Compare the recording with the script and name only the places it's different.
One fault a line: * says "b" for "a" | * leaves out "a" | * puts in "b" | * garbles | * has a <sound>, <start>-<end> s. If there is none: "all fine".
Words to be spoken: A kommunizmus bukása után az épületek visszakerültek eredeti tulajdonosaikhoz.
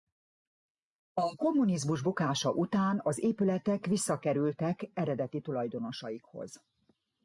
all fine